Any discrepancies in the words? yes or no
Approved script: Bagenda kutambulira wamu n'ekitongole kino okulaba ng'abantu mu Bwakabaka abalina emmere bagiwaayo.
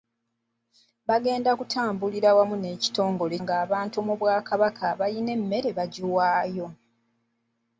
yes